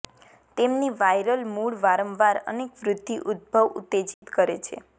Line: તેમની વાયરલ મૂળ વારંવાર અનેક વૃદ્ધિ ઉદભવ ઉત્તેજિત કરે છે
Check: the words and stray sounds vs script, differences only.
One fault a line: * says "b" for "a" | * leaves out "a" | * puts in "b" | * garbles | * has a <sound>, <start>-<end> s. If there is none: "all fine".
* has a dropout, 4.1-4.2 s